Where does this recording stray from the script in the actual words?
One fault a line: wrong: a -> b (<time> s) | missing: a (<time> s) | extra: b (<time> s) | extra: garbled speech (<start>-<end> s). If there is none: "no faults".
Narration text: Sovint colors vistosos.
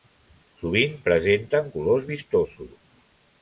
extra: presenten (1.1 s)